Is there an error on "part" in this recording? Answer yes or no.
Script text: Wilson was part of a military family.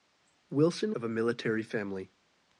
yes